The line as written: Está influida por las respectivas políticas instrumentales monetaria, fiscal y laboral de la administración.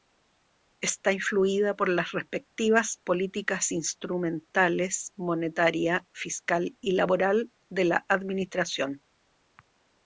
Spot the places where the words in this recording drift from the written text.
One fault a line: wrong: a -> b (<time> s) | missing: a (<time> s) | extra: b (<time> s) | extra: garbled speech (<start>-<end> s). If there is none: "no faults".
no faults